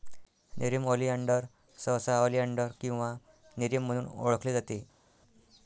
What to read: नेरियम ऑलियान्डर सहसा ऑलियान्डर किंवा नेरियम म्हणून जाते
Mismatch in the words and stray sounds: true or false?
true